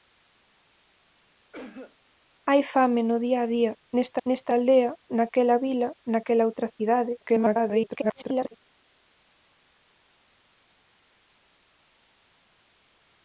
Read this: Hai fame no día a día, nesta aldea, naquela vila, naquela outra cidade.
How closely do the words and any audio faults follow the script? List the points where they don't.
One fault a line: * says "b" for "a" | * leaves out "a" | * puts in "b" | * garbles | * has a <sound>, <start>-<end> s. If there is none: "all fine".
* has a cough, 1.5-2.0 s
* puts in "nesta"
* garbles